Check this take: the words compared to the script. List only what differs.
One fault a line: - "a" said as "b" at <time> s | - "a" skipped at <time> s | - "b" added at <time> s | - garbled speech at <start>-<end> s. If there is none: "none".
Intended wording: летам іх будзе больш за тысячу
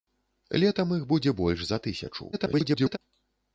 - garbled speech at 2.3-3.0 s